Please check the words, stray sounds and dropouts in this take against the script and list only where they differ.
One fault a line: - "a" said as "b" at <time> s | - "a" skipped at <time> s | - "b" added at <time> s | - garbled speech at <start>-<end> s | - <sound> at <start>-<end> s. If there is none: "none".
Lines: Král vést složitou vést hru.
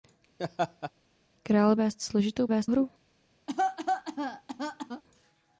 - laugh at 0.4-0.9 s
- cough at 3.5-5.0 s